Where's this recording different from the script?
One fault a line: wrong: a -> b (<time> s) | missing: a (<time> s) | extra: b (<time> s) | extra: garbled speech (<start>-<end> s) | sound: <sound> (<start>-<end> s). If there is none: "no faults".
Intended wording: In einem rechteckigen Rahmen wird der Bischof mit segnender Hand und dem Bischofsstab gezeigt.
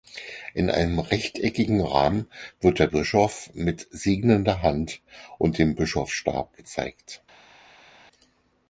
no faults